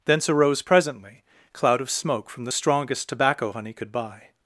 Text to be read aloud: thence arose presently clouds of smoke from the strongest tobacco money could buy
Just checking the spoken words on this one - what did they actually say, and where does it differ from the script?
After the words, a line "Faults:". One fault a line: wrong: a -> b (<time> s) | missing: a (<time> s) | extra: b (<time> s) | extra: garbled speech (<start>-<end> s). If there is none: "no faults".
thence arose presently cloud of smoke from the strongest tobacco honey could buy
Faults:
wrong: clouds -> cloud (1.5 s)
wrong: money -> honey (3.5 s)